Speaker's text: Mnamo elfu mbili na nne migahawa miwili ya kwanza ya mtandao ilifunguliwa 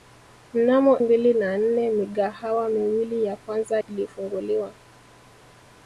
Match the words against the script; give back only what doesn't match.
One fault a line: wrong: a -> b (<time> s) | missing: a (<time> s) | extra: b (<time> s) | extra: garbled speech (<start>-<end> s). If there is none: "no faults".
missing: elfu (1.0 s)
missing: ya mtandao (3.8 s)